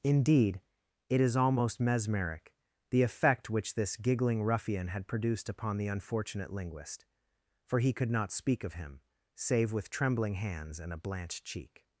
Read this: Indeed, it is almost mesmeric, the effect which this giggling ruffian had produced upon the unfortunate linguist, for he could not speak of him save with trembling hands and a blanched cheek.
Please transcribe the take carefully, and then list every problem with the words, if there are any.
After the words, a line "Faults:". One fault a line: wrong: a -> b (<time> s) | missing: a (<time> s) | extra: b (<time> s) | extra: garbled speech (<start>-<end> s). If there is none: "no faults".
Indeed, it is almost mesmeric, the effect which this giggling ruffian had produced upon the unfortunate linguist, for he could not speak of him save with trembling hands and a blanched cheek.
Faults:
no faults